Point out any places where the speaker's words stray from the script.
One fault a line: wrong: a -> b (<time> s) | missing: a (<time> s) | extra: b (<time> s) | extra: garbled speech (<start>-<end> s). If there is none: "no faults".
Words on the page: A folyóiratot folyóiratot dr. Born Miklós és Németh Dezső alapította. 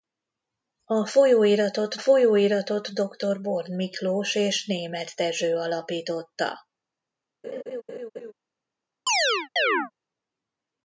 no faults